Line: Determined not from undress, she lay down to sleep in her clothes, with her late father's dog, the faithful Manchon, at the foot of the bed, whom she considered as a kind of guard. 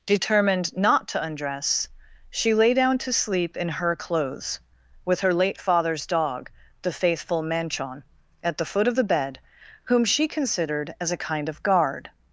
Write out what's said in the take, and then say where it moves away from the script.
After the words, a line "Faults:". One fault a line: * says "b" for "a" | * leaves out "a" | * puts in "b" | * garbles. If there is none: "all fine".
Determined not to undress, she lay down to sleep in her clothes, with her late father's dog, the faithful Manchon, at the foot of the bed, whom she considered as a kind of guard.
Faults:
* says "to" for "from"